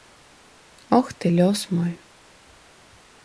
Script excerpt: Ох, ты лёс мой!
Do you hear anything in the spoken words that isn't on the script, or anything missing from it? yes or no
no